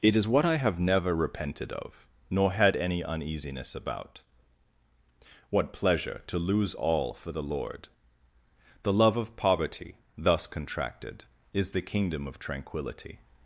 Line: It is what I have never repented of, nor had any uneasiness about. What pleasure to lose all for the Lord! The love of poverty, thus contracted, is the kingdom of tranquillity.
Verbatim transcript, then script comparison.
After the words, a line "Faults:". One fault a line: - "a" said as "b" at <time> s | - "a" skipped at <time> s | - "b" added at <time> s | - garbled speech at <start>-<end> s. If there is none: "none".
It is what I have never repented of, nor had any uneasiness about. What pleasure to lose all for the Lord! The love of poverty, thus contracted, is the kingdom of tranquillity.
Faults:
none